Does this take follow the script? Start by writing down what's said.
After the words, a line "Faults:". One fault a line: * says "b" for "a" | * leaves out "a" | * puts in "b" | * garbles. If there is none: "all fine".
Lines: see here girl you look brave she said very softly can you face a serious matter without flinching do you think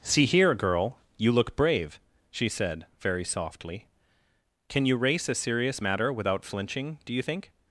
see here girl you look brave she said very softly can you race a serious matter without flinching do you think
Faults:
* says "race" for "face"